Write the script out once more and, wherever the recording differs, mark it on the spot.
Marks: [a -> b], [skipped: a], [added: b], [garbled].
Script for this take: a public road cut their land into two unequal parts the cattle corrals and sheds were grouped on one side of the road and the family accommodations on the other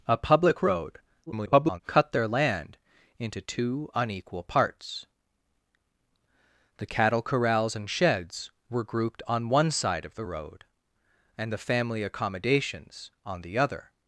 a public road [garbled] cut their land into two unequal parts the cattle corrals and sheds were grouped on one side of the road and the family accommodations on the other